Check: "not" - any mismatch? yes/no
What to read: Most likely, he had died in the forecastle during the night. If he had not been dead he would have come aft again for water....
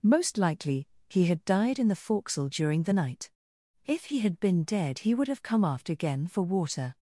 yes